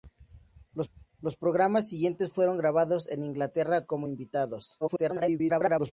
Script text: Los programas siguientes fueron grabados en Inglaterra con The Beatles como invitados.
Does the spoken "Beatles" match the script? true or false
false